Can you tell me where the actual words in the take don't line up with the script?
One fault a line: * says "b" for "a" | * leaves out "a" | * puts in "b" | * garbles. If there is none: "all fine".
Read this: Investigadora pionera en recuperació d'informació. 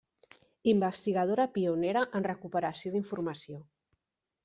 all fine